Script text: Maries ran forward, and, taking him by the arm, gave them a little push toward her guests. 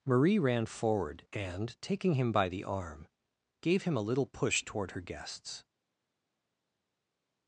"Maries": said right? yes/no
no